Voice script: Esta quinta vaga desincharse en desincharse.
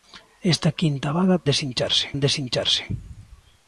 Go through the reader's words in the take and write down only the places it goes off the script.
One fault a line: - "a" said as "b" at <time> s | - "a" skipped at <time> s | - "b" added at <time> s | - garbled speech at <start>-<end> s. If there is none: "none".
none